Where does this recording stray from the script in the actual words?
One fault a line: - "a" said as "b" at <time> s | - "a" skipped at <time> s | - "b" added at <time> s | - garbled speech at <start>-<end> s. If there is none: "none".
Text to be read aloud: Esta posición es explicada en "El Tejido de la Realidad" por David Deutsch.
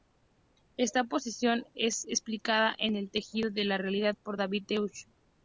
none